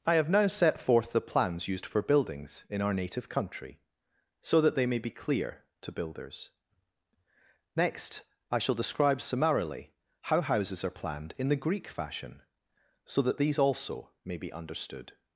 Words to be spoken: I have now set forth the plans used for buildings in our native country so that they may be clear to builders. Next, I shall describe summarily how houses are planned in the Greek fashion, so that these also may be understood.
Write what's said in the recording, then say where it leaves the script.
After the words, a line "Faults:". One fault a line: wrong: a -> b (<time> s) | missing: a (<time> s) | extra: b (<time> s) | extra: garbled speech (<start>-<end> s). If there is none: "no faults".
I have now set forth the plans used for buildings in our native country so that they may be clear to builders. Next, I shall describe summarily how houses are planned in the Greek fashion, so that these also may be understood.
Faults:
no faults